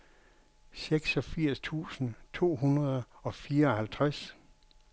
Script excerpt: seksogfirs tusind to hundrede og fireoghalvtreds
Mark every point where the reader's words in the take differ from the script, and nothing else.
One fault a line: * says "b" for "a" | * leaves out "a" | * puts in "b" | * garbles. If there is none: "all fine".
all fine